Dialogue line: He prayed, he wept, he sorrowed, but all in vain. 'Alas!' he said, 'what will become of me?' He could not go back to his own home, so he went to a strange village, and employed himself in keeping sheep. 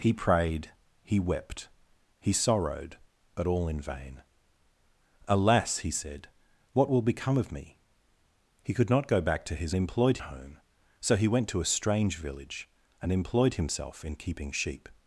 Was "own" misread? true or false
true